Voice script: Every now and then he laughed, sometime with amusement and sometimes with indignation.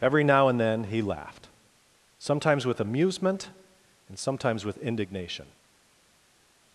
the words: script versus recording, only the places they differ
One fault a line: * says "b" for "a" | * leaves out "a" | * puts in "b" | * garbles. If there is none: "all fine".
* says "sometimes" for "sometime"